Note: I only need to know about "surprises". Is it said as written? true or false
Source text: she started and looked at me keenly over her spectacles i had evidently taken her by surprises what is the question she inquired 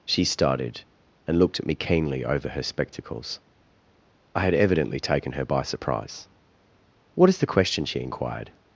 false